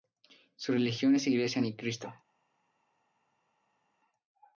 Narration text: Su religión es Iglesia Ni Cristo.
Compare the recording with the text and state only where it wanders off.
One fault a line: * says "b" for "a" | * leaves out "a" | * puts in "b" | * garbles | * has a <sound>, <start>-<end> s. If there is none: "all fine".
all fine